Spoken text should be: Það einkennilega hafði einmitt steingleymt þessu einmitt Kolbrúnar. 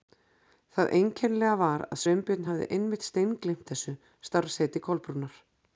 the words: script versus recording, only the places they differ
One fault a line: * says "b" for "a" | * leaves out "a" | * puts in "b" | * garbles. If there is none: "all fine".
* puts in "var að Sveinbjörn"
* says "starfsheiti" for "einmitt"